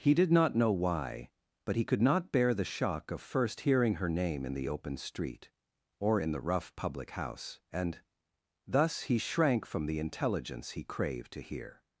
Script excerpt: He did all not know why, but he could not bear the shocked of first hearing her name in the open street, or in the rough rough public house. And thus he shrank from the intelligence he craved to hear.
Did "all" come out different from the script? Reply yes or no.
yes